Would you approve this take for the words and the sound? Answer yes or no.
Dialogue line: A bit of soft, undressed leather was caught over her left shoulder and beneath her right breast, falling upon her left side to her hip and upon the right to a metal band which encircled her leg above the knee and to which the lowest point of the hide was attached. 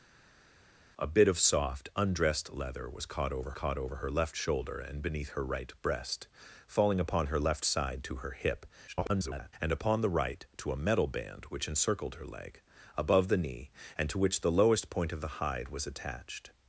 no